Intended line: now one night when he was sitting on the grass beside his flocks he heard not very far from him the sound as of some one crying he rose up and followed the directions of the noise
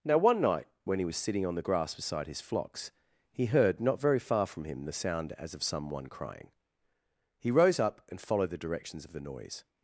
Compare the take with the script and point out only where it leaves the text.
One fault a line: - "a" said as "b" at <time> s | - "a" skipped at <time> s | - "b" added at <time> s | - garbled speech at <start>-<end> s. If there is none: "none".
none